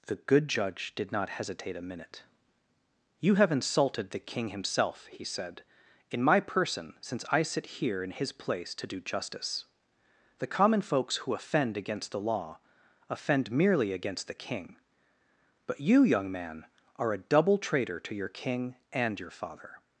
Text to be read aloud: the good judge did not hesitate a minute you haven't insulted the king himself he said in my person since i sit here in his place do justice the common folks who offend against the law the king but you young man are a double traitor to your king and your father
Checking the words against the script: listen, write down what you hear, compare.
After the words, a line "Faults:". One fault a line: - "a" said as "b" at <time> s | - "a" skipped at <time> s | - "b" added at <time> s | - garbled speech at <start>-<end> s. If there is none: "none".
the good judge did not hesitate a minute you have insulted the king himself he said in my person since i sit here in his place to do justice the common folks who offend against the law offend merely against the king but you young man are a double traitor to your king and your father
Faults:
- "haven't" said as "have" at 3.4 s
- "to" added at 8.8 s
- "offend merely against" added at 13.1 s